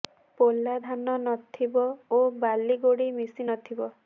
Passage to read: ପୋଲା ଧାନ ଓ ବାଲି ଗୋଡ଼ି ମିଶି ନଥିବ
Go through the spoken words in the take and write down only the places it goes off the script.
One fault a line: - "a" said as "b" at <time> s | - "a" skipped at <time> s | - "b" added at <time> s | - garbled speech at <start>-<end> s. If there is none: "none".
- "ନଥିବ" added at 1.2 s